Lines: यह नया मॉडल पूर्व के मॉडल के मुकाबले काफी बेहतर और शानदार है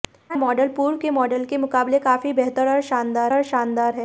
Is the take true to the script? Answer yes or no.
no